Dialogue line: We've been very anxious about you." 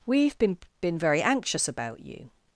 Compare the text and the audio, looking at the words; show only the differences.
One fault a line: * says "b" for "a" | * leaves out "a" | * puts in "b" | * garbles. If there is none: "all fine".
* puts in "been"